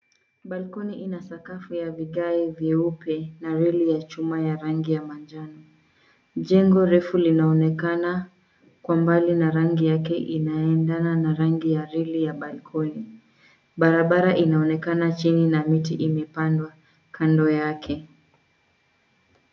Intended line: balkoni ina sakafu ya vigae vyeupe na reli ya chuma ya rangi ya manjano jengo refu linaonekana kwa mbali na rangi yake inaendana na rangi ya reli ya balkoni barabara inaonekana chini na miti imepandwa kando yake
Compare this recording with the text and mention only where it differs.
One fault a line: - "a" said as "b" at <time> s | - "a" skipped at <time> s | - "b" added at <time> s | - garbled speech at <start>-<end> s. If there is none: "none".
none